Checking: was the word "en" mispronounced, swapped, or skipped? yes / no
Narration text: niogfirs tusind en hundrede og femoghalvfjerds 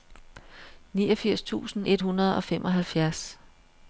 yes